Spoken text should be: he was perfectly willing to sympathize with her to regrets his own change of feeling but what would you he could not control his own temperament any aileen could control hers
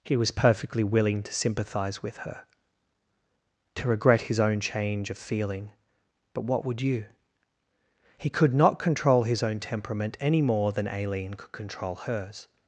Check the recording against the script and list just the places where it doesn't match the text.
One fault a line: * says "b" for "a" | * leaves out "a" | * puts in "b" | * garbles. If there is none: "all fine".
* says "regret" for "regrets"
* puts in "more than"